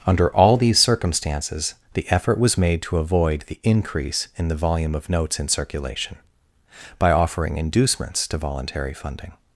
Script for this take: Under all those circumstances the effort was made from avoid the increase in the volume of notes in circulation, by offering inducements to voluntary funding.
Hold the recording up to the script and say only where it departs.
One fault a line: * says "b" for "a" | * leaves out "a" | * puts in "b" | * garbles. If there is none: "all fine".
* says "these" for "those"
* says "to" for "from"